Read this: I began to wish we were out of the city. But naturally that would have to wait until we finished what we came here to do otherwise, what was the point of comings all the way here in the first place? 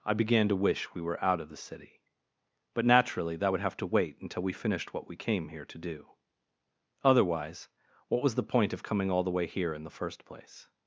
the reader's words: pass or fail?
fail